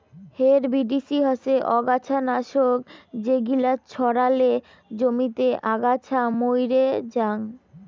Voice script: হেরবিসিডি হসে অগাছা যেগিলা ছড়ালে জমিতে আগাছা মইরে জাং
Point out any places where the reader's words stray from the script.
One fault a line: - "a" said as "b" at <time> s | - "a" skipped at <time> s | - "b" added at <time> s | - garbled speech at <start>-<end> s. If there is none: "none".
- "নাশক" added at 2.3 s